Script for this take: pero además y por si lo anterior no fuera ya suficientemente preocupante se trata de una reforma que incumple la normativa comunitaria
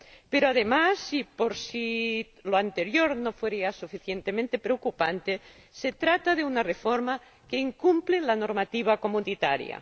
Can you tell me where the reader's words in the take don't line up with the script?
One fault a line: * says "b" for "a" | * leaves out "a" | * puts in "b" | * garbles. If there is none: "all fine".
all fine